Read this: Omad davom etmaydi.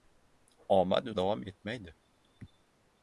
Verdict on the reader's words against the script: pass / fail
pass